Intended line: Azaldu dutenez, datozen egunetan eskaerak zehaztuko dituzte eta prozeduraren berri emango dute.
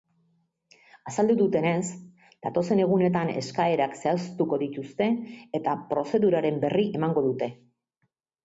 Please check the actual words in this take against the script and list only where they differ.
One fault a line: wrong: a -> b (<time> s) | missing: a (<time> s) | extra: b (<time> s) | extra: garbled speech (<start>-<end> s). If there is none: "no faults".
no faults